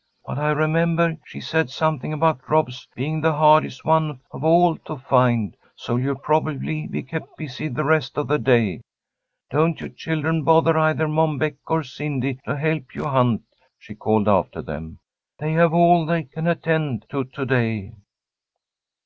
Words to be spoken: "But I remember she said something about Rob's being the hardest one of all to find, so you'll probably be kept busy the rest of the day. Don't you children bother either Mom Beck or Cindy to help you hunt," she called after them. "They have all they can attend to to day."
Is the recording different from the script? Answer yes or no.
no